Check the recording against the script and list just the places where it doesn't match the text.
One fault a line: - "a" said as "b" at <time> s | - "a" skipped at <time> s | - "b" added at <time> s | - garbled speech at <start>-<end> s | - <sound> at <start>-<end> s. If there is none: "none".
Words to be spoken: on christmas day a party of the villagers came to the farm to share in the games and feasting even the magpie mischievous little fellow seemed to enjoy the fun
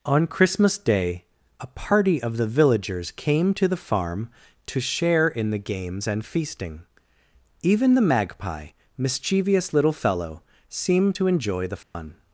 - dropout at 11.8-11.9 s